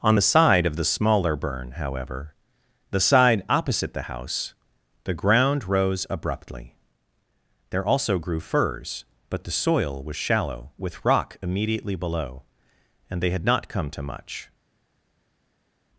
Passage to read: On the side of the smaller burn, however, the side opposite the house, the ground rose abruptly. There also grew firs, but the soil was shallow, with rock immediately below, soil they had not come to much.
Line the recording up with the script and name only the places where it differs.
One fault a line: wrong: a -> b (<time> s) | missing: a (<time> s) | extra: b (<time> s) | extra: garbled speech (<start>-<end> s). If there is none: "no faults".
wrong: soil -> and (13.1 s)